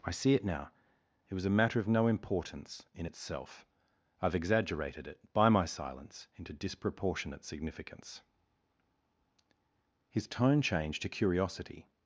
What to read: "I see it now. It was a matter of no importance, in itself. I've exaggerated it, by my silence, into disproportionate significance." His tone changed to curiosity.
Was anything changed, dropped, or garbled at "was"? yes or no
no